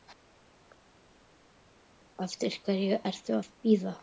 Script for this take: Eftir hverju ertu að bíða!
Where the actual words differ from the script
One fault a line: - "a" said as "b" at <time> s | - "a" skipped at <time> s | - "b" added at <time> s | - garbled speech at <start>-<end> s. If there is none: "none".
none